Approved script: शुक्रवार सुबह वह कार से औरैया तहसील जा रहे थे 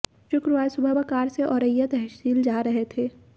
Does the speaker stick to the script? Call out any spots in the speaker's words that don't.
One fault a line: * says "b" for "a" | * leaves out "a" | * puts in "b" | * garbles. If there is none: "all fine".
all fine